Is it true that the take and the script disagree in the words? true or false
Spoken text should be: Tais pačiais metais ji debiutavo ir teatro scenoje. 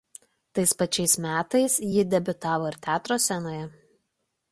false